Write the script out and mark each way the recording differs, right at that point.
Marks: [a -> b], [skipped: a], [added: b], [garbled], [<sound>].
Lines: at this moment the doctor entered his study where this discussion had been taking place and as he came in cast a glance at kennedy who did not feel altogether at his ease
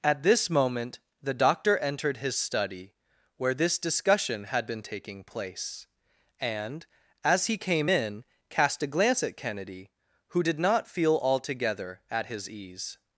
at this moment the doctor entered his study where this discussion had been taking place and as he came in cast a glance at kennedy who did not feel altogether at his ease